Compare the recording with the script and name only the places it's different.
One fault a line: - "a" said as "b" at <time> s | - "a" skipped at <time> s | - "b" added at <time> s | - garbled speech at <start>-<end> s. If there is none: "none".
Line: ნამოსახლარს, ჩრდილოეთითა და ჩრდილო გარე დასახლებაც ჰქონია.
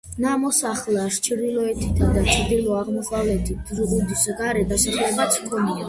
- "აღმოსავლეთით ზღუდის" added at 2.8 s